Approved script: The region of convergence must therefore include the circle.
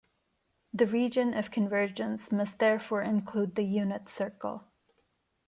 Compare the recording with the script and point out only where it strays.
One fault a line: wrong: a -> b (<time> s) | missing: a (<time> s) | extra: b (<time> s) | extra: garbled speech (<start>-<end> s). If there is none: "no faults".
extra: unit (3.6 s)